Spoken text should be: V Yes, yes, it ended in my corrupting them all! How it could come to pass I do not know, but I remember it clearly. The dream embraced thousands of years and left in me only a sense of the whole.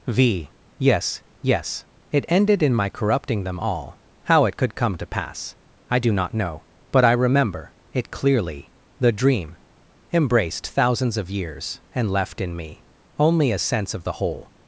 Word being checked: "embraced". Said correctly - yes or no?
yes